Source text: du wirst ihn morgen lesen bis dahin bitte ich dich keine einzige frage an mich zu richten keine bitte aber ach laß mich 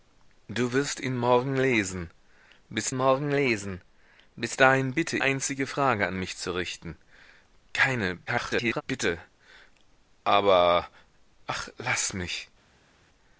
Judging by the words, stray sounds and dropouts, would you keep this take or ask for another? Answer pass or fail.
fail